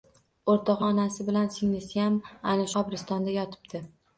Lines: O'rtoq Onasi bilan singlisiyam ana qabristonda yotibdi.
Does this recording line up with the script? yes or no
yes